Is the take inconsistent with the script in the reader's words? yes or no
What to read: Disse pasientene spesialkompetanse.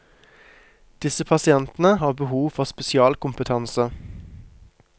yes